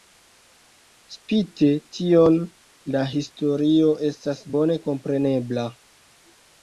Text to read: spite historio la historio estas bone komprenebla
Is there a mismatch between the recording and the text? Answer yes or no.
yes